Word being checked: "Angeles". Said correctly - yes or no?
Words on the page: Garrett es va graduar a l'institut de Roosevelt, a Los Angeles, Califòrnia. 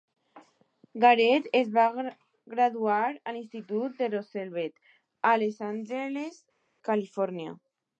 yes